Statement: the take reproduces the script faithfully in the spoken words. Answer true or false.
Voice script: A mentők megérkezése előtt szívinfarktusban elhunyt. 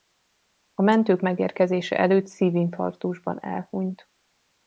true